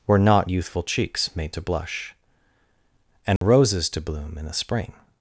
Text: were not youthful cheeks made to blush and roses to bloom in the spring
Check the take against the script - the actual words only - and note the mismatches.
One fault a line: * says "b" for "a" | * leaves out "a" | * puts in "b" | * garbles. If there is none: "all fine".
all fine